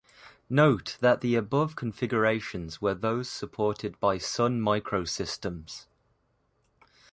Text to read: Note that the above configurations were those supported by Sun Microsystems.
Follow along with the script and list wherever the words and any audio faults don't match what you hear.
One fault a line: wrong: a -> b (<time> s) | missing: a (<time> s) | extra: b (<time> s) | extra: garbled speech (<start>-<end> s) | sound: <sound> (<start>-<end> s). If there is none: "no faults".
no faults